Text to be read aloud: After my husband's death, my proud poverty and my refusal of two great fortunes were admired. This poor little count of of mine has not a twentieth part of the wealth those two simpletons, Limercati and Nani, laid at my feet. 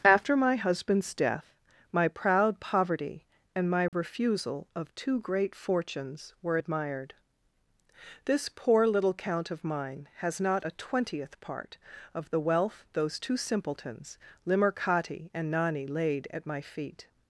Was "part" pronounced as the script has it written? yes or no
yes